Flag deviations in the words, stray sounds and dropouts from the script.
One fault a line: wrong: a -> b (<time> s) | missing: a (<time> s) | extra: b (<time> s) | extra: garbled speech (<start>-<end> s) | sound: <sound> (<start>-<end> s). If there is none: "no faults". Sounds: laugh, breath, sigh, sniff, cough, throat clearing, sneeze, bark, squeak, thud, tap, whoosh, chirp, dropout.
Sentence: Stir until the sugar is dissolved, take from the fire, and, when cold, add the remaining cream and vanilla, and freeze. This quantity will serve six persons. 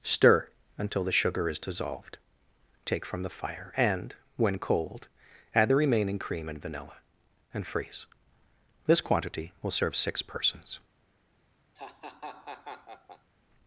sound: laugh (11.8-13.3 s)